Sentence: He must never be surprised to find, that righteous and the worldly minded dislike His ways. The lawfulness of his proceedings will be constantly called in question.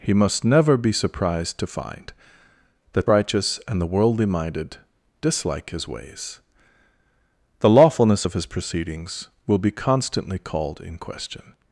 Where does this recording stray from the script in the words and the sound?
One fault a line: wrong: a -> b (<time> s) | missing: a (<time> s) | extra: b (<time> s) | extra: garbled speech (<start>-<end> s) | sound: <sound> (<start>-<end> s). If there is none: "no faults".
no faults